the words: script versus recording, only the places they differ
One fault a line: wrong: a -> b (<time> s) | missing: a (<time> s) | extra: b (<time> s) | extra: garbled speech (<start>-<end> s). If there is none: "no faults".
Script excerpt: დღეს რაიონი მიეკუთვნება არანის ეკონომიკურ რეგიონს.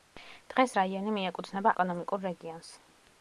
missing: არანის (1.7 s)